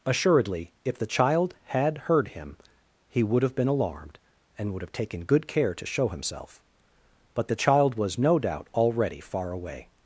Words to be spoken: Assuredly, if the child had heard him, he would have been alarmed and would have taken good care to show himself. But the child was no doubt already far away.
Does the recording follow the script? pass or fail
pass